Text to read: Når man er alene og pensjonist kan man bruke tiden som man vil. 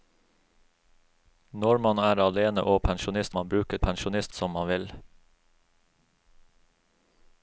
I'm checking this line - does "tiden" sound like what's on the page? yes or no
no